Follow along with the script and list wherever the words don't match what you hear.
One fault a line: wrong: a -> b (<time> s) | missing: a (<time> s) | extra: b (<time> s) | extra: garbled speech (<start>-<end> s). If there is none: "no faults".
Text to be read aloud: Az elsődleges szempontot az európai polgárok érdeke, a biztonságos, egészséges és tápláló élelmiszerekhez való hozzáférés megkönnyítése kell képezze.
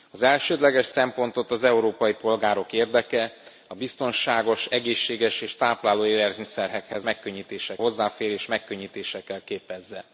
wrong: való -> megkönnyítése (7.0 s)